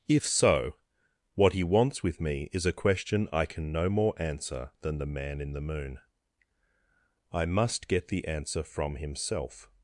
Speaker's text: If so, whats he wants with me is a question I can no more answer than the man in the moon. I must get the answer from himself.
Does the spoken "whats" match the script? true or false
false